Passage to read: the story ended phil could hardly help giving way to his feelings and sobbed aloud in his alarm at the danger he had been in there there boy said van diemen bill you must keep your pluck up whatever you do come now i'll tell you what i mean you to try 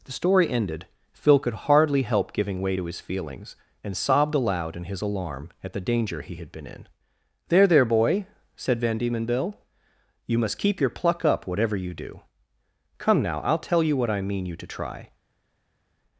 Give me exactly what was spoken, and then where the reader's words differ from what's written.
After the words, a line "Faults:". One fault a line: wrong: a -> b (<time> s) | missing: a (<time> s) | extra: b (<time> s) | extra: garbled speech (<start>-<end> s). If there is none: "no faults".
the story ended phil could hardly help giving way to his feelings and sobbed aloud in his alarm at the danger he had been in there there boy said van diemen bill you must keep your pluck up whatever you do come now i'll tell you what i mean you to try
Faults:
no faults